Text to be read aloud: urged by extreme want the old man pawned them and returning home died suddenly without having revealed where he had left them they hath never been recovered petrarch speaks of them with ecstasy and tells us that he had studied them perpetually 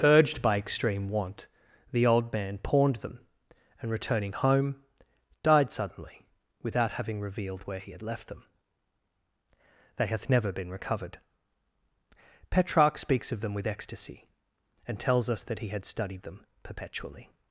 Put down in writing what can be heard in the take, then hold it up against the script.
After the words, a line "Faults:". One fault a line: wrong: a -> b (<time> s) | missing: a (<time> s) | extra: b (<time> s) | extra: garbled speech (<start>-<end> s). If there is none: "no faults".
urged by extreme want the old man pawned them and returning home died suddenly without having revealed where he had left them they hath never been recovered petrarch speaks of them with ecstasy and tells us that he had studied them perpetually
Faults:
no faults